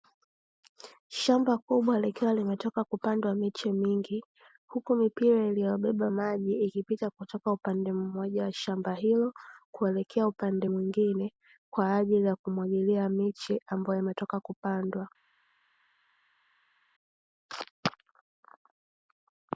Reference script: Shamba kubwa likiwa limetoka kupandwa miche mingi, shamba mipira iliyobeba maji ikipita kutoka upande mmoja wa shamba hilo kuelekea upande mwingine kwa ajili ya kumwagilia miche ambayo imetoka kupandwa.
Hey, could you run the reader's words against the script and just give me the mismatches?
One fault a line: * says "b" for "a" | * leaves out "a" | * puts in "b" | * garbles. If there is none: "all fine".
* says "huku" for "shamba"